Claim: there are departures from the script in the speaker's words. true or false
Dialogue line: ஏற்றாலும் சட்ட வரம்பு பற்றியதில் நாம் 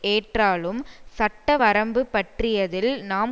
false